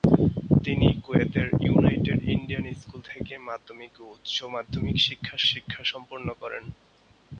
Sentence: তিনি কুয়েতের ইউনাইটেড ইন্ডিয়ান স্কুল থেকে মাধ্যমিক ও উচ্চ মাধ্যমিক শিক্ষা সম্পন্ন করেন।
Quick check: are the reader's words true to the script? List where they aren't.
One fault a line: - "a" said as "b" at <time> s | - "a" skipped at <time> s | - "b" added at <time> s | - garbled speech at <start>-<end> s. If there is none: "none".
- "শিক্ষা" added at 5.5 s